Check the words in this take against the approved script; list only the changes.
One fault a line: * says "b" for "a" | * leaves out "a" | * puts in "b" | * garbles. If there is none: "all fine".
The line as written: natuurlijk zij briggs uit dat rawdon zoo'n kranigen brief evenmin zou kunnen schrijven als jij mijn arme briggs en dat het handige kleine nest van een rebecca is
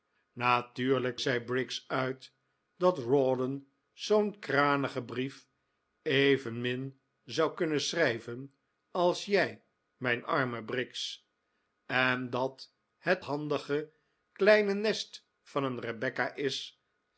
all fine